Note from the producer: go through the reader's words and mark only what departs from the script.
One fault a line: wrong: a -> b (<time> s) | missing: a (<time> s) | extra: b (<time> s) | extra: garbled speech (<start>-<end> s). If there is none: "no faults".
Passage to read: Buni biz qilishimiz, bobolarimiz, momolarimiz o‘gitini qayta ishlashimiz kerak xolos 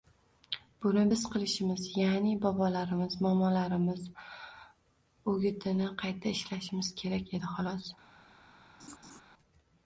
extra: ya'ni (2.0 s)
extra: edi (7.4 s)